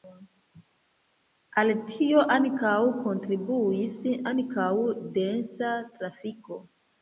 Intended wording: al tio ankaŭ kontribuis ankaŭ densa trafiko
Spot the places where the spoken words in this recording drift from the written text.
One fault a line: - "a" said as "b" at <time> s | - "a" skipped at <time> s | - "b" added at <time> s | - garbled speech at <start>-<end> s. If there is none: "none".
none